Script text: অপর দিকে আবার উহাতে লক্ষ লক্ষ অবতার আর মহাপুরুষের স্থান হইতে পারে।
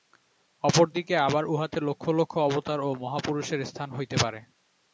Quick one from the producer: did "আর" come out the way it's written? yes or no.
no